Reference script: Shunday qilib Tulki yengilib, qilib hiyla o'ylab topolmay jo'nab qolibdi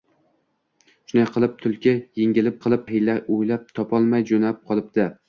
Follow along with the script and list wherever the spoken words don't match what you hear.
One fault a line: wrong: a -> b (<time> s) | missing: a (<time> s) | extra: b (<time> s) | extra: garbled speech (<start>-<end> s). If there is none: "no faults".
no faults